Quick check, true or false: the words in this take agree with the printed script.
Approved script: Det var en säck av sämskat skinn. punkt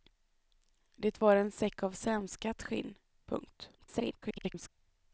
false